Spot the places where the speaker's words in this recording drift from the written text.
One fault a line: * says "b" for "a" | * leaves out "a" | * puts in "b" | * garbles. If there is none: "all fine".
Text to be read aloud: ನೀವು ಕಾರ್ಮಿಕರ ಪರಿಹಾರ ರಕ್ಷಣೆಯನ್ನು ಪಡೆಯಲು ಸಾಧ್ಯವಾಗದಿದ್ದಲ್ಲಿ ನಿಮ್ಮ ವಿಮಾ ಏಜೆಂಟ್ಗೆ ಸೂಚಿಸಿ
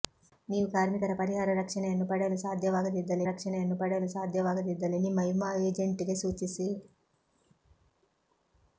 * puts in "ರಕ್ಷಣೆಯನ್ನು ಪಡೆಯಲು ಸಾಧ್ಯವಾಗದಿದ್ದಲ್ಲಿ"